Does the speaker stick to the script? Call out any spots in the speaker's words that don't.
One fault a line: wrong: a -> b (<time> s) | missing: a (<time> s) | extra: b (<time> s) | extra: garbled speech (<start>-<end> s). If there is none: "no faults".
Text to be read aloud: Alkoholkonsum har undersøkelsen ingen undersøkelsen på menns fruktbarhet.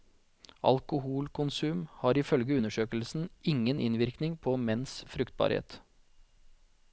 extra: ifølge (2.2 s)
wrong: undersøkelsen -> innvirkning (3.8 s)